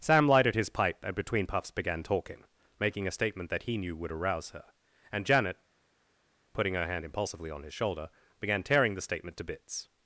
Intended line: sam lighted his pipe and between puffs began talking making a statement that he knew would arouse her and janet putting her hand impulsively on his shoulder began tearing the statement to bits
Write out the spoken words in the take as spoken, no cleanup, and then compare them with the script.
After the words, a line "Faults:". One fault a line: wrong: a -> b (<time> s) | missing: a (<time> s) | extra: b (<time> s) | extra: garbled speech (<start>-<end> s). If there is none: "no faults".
sam lighted his pipe and between puffs began talking making a statement that he knew would arouse her and janet putting her hand impulsively on his shoulder began tearing the statement to bits
Faults:
no faults